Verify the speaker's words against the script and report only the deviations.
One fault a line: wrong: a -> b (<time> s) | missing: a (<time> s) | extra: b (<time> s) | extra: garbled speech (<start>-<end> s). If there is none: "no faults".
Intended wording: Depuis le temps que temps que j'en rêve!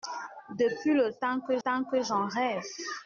no faults